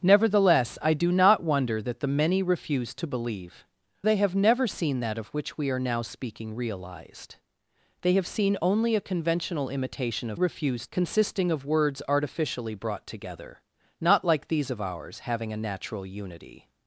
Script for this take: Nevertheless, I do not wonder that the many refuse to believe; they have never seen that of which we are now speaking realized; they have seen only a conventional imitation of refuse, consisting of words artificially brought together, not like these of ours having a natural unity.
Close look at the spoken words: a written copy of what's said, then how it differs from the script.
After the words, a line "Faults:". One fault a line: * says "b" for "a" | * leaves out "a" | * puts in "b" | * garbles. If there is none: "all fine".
Nevertheless, I do not wonder that the many refuse to believe; they have never seen that of which we are now speaking realized; they have seen only a conventional imitation of refuse, consisting of words artificially brought together, not like these of ours having a natural unity.
Faults:
all fine